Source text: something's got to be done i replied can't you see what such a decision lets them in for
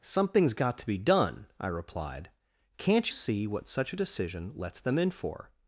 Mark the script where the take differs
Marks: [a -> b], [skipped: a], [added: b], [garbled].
something's got to be done i replied can't [skipped: you] see what such a decision lets them in for